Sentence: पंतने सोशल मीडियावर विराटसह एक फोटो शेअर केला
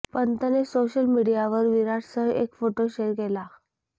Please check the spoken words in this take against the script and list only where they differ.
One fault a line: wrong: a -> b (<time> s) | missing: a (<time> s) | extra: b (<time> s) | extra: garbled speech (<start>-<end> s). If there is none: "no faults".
no faults